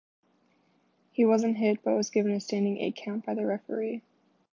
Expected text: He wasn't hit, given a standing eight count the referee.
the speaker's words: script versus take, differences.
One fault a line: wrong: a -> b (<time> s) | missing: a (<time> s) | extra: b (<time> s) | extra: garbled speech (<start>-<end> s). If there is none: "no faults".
extra: but was (1.8 s)
extra: by (3.2 s)